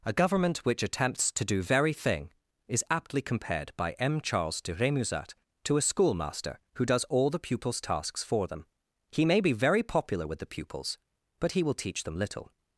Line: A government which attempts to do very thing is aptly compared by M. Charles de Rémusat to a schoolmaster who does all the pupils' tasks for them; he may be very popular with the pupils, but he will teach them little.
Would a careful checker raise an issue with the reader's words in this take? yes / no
no